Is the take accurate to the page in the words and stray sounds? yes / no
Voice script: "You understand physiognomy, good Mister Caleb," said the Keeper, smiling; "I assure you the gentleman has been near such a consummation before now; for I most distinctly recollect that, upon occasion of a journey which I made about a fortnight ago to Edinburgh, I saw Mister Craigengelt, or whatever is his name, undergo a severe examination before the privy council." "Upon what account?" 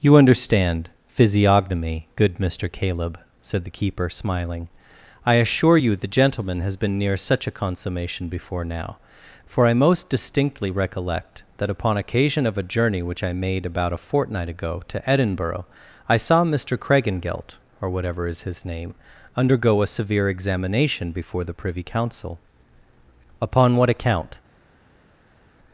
yes